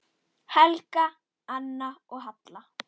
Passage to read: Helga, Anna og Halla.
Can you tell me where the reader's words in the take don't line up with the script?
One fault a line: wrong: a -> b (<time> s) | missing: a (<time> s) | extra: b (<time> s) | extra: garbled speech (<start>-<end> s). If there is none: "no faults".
no faults